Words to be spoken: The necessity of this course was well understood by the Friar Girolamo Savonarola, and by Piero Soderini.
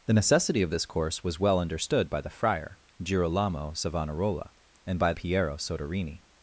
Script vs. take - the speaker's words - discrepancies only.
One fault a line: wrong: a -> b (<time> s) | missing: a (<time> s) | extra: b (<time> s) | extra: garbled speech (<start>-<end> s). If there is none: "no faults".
no faults